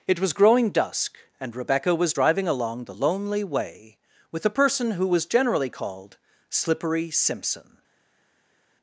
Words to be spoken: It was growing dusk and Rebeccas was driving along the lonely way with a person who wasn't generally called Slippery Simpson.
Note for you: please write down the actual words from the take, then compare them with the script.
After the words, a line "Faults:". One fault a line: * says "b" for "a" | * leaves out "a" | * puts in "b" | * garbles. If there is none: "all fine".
It was growing dusk and Rebecca was driving along the lonely way with a person who was generally called Slippery Simpson.
Faults:
* says "Rebecca" for "Rebeccas"
* says "was" for "wasn't"